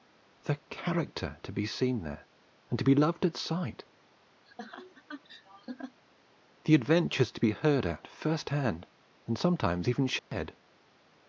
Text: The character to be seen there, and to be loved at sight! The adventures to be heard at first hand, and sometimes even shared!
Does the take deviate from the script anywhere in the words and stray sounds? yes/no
yes